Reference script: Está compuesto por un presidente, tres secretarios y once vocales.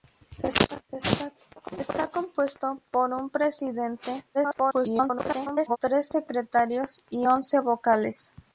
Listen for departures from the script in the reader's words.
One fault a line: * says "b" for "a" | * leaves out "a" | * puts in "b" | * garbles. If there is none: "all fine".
* garbles